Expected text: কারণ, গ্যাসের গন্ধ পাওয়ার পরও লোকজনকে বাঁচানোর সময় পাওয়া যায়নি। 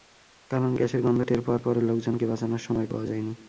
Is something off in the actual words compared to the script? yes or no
yes